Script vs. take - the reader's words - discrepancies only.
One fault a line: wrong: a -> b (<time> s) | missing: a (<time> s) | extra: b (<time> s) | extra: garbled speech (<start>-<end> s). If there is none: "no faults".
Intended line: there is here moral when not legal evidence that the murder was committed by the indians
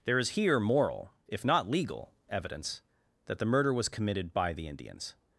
wrong: when -> if (1.3 s)